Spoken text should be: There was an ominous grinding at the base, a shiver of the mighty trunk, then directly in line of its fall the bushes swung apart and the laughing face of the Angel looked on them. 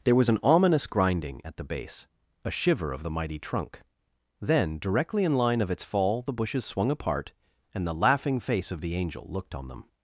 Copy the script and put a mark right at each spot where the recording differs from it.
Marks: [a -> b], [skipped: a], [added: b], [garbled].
There was an ominous grinding at the base, a shiver of the mighty trunk, then directly in line of its fall the bushes swung apart and the laughing face of the Angel looked on them.